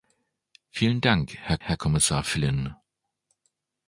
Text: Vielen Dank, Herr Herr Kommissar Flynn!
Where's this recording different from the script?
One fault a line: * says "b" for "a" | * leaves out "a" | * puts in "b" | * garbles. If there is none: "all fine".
all fine